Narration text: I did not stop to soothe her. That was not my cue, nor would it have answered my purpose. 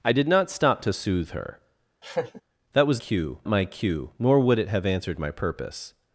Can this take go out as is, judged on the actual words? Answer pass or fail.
fail